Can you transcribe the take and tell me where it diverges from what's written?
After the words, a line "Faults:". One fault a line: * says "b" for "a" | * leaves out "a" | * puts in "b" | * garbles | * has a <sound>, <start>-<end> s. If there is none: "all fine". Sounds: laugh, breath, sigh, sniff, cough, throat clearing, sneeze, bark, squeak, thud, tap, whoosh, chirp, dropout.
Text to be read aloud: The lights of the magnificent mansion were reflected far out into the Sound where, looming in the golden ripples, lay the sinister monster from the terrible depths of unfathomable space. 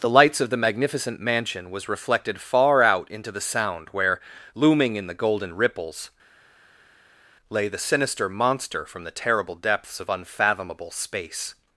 The lights of the magnificent mansion was reflected far out into the Sound where, looming in the golden ripples, lay the sinister monster from the terrible depths of unfathomable space.
Faults:
* says "was" for "were"